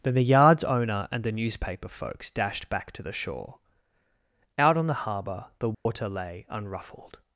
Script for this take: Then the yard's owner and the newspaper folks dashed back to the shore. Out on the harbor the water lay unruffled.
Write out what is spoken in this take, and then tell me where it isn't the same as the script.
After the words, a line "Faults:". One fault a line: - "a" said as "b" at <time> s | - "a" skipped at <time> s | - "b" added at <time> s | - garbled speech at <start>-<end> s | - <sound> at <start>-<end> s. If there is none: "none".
Then the yard's owner and the newspaper folks dashed back to the shore. Out on the harbor the water lay unruffled.
Faults:
- dropout at 5.7-5.9 s